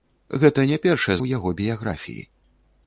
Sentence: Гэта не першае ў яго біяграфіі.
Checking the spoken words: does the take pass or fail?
pass